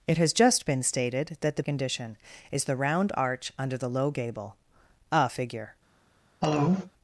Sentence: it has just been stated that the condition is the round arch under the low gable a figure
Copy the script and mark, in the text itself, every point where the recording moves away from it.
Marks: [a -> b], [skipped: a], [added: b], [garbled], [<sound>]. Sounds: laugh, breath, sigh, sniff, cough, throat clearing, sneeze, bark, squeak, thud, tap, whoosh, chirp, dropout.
it has just been stated that the condition is the round arch under the low gable a figure [cough]